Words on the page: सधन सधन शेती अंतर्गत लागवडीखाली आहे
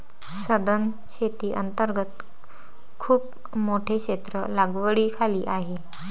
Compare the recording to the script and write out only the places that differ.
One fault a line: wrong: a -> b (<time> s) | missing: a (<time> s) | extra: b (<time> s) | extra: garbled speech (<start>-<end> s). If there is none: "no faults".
missing: सधन (0.9 s)
extra: खूप मोठे क्षेत्र (3.0 s)